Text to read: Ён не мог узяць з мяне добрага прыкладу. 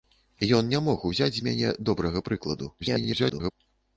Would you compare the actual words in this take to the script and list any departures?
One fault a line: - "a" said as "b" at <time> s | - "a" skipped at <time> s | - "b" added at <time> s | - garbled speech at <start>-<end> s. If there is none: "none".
- garbled speech at 2.8-3.5 s